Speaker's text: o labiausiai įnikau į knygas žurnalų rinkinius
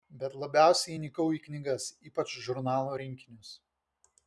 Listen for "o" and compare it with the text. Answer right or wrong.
wrong